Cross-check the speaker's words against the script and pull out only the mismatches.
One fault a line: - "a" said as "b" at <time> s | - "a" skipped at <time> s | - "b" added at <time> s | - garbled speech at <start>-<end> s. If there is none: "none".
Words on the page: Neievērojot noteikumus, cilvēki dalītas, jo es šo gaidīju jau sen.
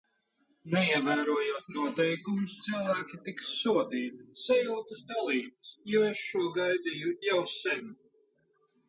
- "tiks sodīti Sajūtas" added at 3.3 s